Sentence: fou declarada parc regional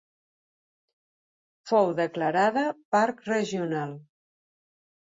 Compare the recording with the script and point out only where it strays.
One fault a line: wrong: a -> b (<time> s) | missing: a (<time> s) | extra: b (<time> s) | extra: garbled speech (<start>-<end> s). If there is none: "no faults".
no faults